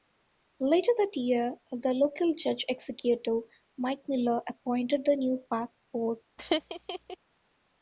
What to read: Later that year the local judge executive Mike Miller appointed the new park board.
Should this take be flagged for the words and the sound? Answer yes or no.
yes